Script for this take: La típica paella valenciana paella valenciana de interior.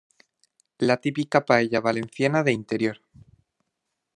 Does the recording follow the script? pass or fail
fail